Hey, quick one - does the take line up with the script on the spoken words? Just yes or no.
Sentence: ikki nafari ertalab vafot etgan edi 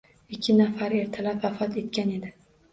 yes